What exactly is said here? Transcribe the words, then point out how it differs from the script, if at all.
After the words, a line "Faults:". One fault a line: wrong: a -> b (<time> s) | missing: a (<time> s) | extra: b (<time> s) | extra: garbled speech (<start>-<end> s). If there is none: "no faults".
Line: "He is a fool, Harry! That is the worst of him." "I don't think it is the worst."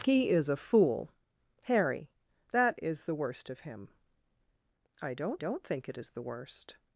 "He is a fool, Harry! That is the worst of him." "I don't don't think it is the worst."
Faults:
extra: don't (5.4 s)